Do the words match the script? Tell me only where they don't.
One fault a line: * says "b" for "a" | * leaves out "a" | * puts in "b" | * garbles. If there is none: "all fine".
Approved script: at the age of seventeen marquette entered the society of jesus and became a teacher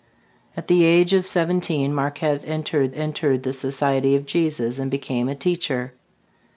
* puts in "entered"